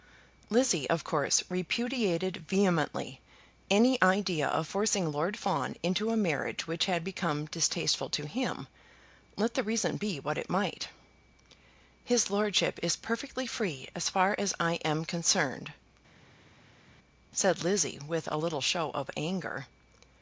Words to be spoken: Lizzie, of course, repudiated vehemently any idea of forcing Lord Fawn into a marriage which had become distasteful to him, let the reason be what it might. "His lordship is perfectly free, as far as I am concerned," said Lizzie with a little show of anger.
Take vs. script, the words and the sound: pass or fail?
pass